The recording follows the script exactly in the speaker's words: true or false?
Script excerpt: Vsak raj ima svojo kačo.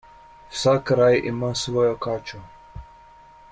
true